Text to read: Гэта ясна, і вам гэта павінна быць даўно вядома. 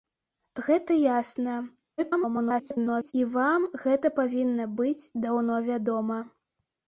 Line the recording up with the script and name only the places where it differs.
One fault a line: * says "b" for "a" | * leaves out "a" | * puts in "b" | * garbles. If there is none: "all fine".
* garbles